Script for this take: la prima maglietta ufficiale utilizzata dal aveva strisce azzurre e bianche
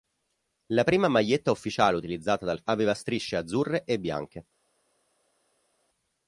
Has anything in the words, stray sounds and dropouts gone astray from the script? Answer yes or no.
no